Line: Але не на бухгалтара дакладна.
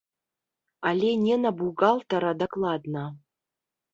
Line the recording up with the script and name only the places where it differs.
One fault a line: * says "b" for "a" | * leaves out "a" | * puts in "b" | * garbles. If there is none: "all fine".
all fine